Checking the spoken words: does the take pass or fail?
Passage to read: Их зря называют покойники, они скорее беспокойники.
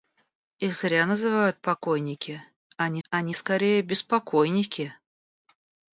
fail